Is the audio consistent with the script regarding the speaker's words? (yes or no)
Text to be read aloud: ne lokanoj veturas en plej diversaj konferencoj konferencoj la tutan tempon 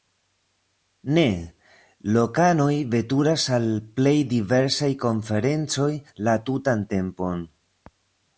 no